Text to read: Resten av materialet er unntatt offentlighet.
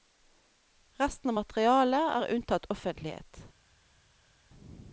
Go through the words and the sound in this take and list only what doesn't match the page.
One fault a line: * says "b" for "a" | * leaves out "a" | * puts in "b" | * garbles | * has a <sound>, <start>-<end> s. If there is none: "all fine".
all fine